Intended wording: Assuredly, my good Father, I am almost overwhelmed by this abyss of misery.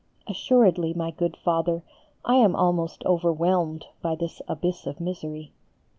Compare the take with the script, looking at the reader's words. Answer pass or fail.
pass